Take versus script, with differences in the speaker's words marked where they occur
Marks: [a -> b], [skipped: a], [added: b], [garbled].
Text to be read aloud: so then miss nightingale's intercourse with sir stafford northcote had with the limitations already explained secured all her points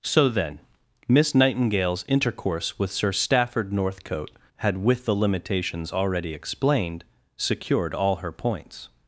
so then miss nightingale's intercourse with sir stafford northcote had with the limitations already explained secured all her points